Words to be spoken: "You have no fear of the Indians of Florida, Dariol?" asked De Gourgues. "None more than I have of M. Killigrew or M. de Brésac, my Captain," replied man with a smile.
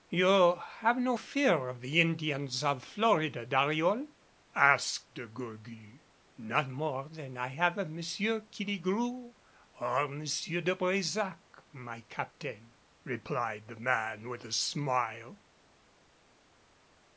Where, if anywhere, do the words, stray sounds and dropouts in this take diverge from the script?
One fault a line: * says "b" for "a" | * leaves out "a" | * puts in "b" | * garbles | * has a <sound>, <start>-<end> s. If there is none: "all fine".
* puts in "the"